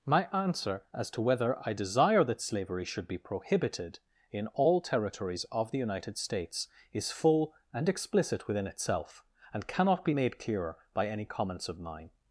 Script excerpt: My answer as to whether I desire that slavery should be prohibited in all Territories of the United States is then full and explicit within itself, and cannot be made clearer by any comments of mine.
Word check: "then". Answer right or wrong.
wrong